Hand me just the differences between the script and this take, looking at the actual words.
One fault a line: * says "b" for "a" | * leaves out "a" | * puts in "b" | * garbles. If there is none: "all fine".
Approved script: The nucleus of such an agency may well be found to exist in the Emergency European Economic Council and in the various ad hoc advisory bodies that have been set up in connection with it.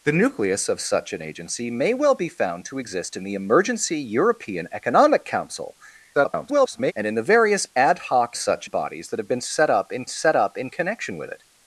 * garbles
* says "such" for "advisory"
* puts in "set up in"